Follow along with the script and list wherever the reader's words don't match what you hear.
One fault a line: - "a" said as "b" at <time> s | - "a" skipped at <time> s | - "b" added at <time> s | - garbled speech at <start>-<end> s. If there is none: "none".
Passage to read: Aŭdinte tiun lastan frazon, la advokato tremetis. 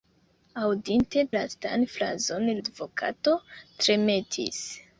- "tiun" skipped at 1.2 s
- "la" skipped at 2.5 s